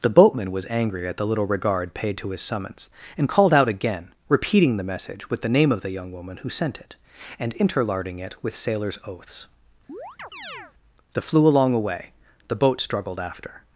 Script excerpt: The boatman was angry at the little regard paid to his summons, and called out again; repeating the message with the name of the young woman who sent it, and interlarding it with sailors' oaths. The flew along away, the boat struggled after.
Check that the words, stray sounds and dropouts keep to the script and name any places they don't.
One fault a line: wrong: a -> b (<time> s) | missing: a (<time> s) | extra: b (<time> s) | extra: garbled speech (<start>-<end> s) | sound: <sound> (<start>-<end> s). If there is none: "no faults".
sound: chirp (9.9-10.7 s)